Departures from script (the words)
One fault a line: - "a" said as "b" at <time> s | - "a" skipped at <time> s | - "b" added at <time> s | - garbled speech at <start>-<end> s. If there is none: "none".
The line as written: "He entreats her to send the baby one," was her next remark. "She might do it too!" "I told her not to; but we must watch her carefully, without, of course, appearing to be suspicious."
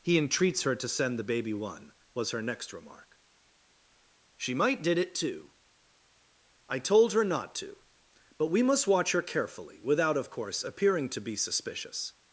- "do" said as "did" at 4.8 s